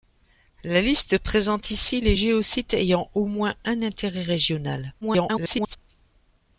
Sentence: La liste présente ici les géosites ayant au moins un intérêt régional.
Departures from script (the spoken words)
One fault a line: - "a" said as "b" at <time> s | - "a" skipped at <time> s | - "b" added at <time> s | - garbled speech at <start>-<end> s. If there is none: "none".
- garbled speech at 5.0-5.8 s